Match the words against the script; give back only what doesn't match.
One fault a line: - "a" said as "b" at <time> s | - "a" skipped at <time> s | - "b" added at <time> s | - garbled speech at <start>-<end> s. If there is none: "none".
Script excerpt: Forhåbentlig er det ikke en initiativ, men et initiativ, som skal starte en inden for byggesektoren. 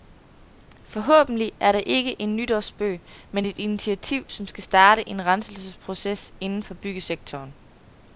- "initiativ" said as "nytårsspøg" at 2.4 s
- "renselsesproces" added at 5.3 s